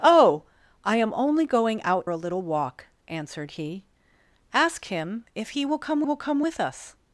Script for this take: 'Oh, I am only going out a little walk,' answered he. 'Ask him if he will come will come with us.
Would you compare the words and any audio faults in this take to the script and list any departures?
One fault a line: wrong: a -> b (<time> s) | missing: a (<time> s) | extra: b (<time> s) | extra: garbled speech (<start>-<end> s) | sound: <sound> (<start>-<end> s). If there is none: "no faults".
no faults